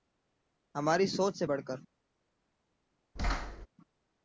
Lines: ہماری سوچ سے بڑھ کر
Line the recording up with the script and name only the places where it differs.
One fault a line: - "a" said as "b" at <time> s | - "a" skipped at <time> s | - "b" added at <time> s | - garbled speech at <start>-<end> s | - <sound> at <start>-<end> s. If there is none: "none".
- thud at 3.2-3.7 s